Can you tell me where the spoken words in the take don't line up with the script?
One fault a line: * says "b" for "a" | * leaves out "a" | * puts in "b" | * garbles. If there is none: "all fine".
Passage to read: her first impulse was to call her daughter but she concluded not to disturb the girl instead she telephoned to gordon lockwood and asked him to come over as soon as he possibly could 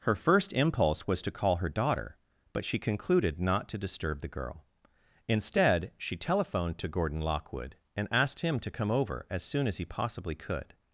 all fine